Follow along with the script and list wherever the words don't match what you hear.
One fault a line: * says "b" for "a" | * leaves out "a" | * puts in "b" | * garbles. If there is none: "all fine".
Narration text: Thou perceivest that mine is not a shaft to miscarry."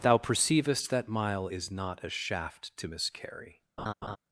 * says "mile" for "mine"